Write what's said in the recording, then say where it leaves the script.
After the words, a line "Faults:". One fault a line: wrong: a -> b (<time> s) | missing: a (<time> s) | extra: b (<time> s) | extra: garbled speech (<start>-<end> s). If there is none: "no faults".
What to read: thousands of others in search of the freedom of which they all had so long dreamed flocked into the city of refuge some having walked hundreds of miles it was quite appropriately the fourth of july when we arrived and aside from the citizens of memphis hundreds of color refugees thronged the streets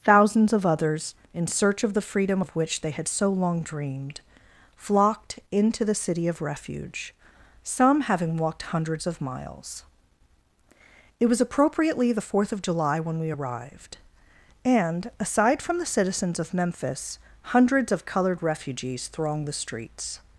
thousands of others in search of the freedom of which they had so long dreamed flocked into the city of refuge some having walked hundreds of miles it was appropriately the fourth of july when we arrived and aside from the citizens of memphis hundreds of colored refugees thronged the streets
Faults:
missing: all (2.9 s)
missing: quite (11.4 s)
wrong: color -> colored (18.0 s)